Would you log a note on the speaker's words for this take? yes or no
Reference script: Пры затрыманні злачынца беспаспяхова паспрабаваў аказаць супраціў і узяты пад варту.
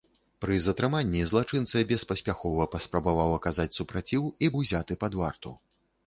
no